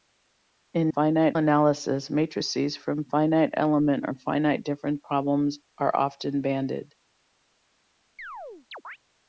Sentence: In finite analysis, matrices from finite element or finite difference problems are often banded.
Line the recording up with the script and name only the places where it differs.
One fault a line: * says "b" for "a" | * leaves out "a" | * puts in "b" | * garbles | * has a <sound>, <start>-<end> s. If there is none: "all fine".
* has a chirp, 8.2-9.0 s